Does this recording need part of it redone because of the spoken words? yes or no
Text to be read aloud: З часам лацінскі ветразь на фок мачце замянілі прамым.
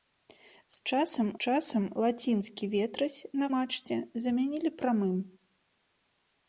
yes